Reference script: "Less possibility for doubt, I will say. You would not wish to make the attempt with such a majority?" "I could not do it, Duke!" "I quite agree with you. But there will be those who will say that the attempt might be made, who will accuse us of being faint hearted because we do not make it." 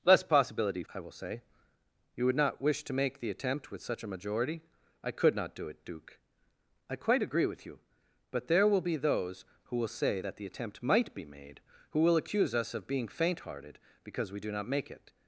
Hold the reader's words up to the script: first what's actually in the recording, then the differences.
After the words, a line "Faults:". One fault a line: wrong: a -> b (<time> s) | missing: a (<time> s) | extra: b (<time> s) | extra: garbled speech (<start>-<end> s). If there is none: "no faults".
"Less possibility I will say. You would not wish to make the attempt with such a majority?" "I could not do it, Duke!" "I quite agree with you. But there will be those who will say that the attempt might be made, who will accuse us of being faint hearted because we do not make it."
Faults:
missing: for doubt (0.8 s)